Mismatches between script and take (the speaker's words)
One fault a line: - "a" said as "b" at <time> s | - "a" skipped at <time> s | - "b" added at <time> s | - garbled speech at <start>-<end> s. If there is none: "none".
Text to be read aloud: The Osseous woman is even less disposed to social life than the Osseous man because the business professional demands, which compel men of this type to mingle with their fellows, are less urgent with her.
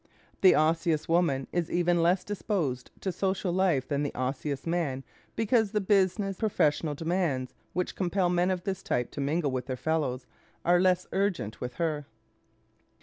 none